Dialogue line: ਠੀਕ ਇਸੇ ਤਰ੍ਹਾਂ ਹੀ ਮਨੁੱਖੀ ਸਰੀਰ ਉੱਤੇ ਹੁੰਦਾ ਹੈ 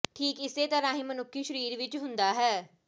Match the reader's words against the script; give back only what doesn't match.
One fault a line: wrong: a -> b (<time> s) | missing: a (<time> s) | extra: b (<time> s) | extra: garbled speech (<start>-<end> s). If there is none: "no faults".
wrong: ਉੱਤੇ -> ਵਿੱਚ (1.8 s)